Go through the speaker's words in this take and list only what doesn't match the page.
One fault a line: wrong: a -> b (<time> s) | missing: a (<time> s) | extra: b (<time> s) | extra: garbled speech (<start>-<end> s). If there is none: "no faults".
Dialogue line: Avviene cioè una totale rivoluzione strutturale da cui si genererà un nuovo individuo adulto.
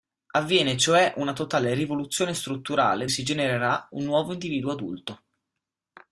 missing: da cui (3.0 s)